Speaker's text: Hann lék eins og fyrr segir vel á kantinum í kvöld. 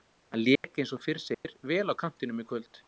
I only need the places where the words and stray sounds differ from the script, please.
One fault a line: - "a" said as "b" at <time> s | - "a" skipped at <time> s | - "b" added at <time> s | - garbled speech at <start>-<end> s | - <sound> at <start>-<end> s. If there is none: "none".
- dropout at 0.6-0.6 s
- dropout at 1.3-1.4 s